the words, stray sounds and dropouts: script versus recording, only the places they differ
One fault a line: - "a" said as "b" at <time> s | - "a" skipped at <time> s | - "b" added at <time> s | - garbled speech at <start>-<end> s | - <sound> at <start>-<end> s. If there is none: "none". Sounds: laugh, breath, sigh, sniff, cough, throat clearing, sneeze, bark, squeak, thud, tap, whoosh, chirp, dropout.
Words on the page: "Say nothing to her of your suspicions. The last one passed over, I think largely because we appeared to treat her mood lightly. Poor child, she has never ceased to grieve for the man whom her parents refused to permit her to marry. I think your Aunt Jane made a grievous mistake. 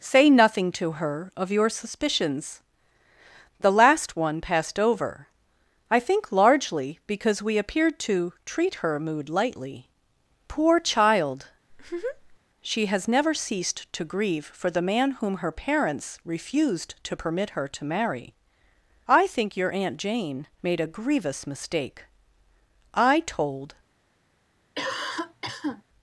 - laugh at 11.7-12.4 s
- "I told" added at 22.9 s
- cough at 24.7-25.8 s